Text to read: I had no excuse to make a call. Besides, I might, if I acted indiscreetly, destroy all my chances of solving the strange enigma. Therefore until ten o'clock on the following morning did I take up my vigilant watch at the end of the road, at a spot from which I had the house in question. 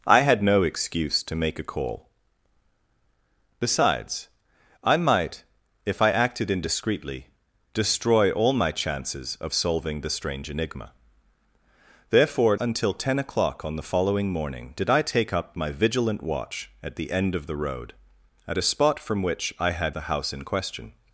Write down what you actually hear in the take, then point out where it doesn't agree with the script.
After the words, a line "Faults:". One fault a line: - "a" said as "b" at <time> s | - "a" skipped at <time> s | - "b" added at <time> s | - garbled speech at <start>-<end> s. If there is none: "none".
I had no excuse to make a call. Besides, I might, if I acted indiscreetly, destroy all my chances of solving the strange enigma. Therefore until ten o'clock on the following morning did I take up my vigilant watch at the end of the road, at a spot from which I had the house in question.
Faults:
none